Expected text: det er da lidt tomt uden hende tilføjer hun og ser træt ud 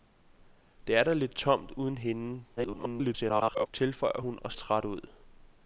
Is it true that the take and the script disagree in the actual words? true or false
true